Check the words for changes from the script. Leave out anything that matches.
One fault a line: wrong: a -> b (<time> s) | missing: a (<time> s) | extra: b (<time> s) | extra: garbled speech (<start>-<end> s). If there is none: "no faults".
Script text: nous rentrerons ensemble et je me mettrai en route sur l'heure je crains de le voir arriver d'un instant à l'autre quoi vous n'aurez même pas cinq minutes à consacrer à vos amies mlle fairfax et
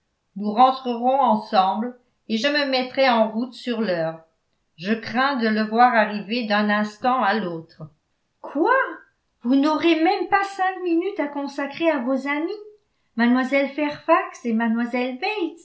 no faults